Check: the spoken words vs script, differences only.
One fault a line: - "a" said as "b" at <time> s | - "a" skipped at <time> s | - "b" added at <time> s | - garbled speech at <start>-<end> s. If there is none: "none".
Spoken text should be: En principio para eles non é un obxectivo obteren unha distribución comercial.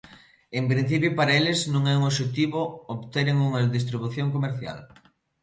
none